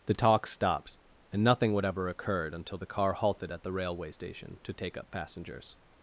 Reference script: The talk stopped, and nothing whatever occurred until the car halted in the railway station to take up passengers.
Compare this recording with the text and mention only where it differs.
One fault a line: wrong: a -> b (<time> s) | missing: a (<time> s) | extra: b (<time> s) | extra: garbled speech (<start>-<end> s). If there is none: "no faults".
wrong: in -> at (3.5 s)